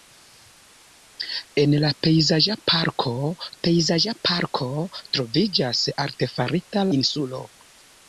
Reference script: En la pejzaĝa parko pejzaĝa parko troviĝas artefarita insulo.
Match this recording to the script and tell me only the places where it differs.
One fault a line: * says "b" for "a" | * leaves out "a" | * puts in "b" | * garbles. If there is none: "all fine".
all fine